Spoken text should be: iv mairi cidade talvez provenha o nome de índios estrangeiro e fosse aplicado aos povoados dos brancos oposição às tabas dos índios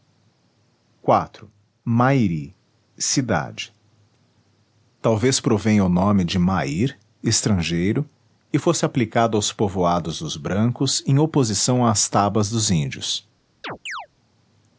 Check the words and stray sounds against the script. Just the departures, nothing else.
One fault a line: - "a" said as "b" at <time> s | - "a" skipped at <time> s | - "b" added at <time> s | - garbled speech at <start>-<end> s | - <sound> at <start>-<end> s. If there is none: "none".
- "índios" said as "mair" at 6.4 s
- "em" added at 11.0 s
- chirp at 13.6-14.1 s